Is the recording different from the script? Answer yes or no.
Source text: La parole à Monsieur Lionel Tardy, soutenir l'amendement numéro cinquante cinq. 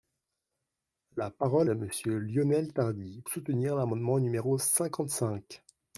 no